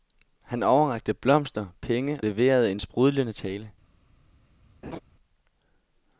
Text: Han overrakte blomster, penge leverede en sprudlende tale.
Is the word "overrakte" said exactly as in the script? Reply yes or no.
yes